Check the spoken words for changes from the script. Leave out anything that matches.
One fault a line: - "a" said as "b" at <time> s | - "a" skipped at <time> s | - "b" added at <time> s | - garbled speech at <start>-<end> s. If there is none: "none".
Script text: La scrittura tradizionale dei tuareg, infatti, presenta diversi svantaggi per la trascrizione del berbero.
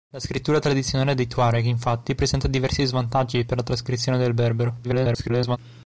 - garbled speech at 4.8-5.6 s